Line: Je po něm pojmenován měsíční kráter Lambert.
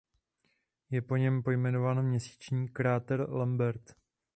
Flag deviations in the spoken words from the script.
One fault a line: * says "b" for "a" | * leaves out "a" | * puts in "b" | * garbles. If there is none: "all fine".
all fine